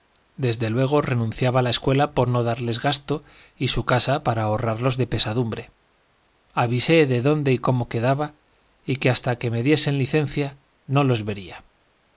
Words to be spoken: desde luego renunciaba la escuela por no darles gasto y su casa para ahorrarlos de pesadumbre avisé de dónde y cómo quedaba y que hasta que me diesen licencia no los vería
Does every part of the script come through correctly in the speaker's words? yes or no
yes